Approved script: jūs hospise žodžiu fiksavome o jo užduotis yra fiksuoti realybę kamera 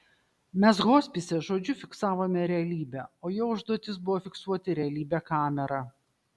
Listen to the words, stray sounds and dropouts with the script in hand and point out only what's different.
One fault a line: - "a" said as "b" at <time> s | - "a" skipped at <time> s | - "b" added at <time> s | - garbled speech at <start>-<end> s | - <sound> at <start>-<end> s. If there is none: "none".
- "jūs" said as "mes" at 0.6 s
- "realybę" added at 2.5 s
- "yra" said as "buvo" at 4.1 s